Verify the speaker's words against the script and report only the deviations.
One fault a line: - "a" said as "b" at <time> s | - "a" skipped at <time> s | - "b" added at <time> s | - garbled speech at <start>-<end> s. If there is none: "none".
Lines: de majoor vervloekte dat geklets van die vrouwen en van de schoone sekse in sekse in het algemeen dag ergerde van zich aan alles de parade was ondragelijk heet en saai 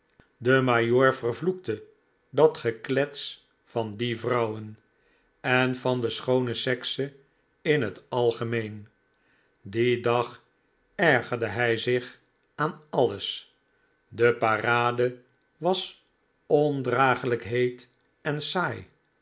- "sekse in" skipped at 7.8 s
- "dien" added at 9.6 s
- "van" said as "hij" at 11.5 s